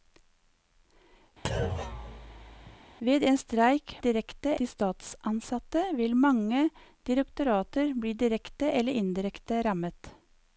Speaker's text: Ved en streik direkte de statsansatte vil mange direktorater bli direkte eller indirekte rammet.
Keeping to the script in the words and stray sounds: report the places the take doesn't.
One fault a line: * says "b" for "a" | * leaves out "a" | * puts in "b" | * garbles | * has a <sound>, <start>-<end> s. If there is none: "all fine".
* has a thud, 1.4-2.8 s